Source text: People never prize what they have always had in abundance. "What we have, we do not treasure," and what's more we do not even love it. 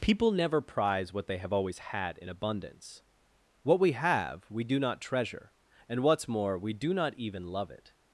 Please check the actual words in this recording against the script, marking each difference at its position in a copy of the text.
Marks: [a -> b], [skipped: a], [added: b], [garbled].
People never prize what they have always had in abundance. "What we have, we do not treasure," and what's more we do not even love it.